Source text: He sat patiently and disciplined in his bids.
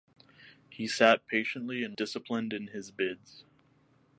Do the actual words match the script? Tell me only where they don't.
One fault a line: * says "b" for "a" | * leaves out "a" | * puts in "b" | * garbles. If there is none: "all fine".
all fine